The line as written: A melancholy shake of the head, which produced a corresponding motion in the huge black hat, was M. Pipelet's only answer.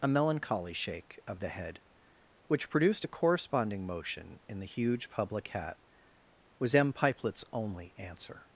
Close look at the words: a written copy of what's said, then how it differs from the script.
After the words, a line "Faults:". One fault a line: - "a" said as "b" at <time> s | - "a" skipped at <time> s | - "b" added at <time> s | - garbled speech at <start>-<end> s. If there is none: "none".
A melancholy shake of the head, which produced a corresponding motion in the huge public hat, was M. Pipelet's only answer.
Faults:
- "black" said as "public" at 5.1 s